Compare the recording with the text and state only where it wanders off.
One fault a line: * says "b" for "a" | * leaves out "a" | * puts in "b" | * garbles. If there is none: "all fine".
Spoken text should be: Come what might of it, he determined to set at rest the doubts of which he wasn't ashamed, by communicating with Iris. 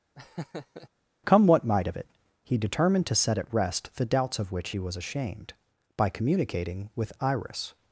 * says "was" for "wasn't"